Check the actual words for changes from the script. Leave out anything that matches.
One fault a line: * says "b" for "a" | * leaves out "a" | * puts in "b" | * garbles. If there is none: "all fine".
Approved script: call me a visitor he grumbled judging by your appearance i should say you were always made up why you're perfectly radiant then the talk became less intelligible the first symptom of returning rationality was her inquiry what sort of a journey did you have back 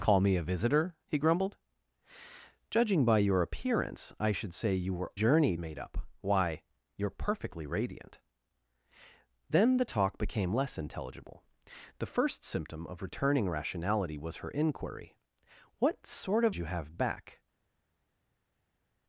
* says "journey" for "always"
* leaves out "a journey did"